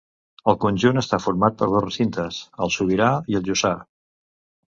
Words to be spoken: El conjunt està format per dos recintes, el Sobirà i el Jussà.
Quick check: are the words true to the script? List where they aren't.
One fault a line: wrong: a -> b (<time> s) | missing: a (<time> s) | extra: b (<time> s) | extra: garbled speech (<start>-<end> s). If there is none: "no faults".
no faults